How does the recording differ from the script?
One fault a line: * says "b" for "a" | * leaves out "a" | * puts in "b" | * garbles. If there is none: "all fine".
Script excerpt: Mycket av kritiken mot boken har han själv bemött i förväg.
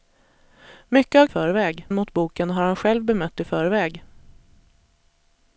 * says "förväg" for "kritiken"